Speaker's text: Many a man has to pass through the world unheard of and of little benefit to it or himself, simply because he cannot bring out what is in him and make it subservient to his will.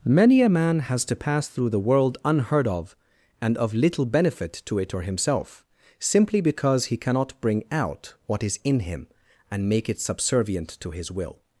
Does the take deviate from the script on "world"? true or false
false